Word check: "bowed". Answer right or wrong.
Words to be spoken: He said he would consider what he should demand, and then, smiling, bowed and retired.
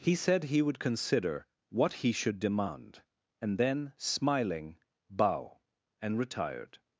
wrong